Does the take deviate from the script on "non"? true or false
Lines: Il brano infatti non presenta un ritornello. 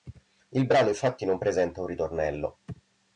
false